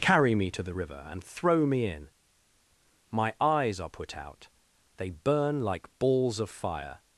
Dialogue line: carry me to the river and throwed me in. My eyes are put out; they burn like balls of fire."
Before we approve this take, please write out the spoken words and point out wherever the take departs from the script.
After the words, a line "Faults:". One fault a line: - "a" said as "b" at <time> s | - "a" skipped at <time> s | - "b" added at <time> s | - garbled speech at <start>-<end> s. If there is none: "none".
carry me to the river and throw me in. My eyes are put out; they burn like balls of fire."
Faults:
- "throwed" said as "throw" at 1.2 s